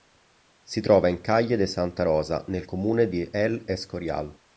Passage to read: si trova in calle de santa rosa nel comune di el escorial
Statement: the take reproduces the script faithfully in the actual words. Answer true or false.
true